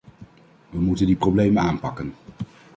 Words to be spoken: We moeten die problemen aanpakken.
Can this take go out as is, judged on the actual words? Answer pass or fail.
pass